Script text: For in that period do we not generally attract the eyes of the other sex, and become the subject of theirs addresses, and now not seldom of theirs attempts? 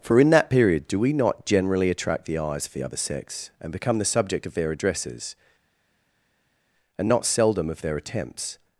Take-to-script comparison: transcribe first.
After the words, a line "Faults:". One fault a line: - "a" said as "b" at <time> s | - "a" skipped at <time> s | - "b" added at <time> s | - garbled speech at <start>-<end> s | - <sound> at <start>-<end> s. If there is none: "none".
For in that period do we not generally attract the eyes of the other sex, and become the subject of their addresses, and not seldom of their attempts?
Faults:
- "theirs" said as "their" at 4.5 s
- "now" skipped at 7.1 s
- "theirs" said as "their" at 7.8 s